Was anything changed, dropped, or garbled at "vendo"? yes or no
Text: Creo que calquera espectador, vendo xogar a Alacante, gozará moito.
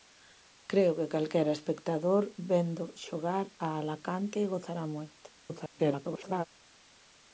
no